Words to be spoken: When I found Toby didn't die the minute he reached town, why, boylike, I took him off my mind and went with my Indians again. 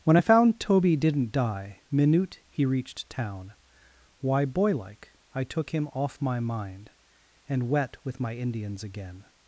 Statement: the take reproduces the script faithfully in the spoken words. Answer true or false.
false